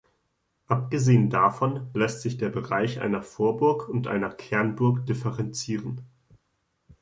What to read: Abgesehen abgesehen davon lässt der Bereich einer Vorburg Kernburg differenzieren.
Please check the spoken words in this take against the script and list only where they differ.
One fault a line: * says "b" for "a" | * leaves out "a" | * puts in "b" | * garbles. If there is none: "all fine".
* leaves out "abgesehen"
* puts in "sich"
* puts in "und einer"